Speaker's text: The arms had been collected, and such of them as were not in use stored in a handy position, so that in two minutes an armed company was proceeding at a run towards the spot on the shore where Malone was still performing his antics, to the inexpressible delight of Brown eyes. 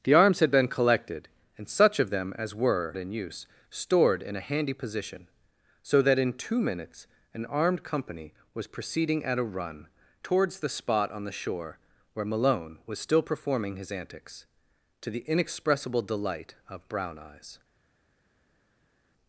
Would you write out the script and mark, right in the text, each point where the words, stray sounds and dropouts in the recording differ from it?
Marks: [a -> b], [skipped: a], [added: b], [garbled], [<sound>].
The arms had been collected, and such of them as were [skipped: not] in use stored in a handy position, so that in two minutes an armed company was proceeding at a run towards the spot on the shore where Malone was still performing his antics, to the inexpressible delight of Brown eyes.